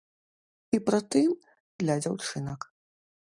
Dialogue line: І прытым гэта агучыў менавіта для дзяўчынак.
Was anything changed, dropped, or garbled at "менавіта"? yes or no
yes